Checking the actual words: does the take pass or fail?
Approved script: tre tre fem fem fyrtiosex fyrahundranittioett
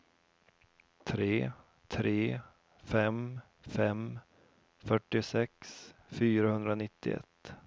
pass